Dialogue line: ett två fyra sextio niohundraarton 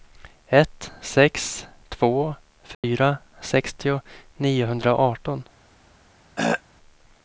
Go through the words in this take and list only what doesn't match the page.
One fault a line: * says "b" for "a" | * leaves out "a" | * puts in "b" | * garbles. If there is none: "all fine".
* puts in "sex"